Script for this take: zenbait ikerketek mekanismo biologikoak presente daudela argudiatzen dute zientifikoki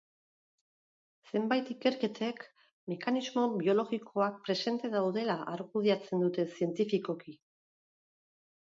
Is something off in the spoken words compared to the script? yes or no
no